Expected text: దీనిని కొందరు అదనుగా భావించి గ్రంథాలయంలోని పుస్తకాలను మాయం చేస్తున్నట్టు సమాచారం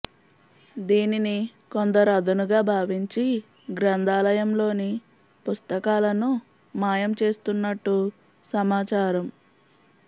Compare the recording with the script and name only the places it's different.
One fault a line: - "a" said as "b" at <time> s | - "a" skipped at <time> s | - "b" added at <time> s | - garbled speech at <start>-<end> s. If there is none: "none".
none